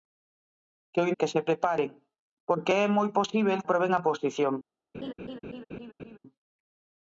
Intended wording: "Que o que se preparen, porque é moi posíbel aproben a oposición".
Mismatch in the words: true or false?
false